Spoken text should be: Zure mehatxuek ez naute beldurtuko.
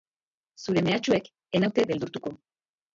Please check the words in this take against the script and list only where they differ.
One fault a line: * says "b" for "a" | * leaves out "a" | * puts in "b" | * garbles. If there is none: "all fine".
all fine